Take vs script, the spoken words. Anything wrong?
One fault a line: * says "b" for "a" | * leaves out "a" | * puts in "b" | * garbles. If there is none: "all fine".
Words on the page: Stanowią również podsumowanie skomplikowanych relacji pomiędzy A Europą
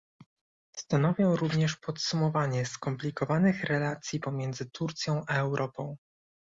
* puts in "Turcją"